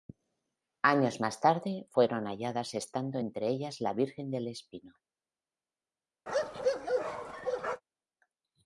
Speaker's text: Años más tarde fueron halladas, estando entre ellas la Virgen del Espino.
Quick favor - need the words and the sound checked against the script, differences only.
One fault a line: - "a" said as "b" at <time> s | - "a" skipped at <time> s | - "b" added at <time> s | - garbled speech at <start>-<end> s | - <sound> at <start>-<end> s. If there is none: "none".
- bark at 6.3-7.8 s